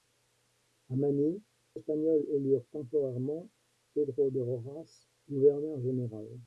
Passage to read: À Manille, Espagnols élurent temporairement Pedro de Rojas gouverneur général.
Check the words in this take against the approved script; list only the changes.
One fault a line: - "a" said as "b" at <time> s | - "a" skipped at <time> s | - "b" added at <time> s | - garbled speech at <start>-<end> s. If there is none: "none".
none